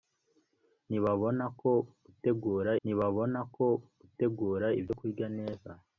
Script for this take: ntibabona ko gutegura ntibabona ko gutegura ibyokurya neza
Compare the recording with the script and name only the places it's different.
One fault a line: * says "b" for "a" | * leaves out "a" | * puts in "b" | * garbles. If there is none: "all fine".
all fine